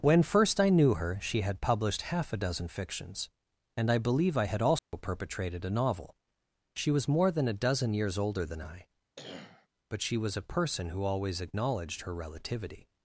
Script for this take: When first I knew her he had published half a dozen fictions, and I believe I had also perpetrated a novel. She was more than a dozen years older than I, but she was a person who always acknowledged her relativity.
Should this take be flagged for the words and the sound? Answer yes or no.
yes